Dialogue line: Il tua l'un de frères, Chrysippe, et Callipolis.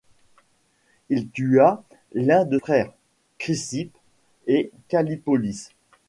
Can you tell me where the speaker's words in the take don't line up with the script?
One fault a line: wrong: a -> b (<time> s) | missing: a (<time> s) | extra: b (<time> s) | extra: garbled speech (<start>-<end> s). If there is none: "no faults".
no faults